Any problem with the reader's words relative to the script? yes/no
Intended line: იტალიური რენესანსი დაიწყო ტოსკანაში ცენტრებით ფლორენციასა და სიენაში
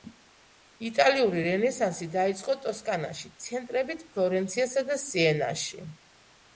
no